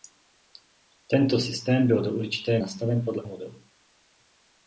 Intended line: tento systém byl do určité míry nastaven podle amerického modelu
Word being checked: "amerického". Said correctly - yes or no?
no